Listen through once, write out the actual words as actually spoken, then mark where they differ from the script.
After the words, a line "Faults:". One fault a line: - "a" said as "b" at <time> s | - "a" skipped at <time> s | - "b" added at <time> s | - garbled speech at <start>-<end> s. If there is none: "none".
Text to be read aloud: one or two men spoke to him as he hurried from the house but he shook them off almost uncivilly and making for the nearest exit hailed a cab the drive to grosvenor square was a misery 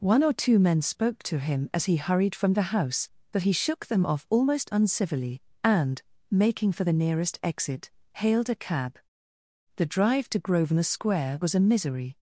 one or two men spoke to him as he hurried from the house but he shook them off almost uncivilly and making for the nearest exit hailed a cab the drive to grosvenor square was a misery
Faults:
none